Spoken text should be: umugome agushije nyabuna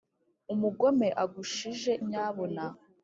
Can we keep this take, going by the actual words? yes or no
yes